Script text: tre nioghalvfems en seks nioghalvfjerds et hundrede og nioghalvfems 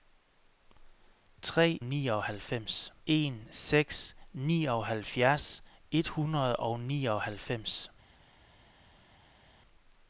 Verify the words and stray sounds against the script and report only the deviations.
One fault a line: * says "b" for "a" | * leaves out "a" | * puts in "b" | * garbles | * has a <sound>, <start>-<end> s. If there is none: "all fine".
all fine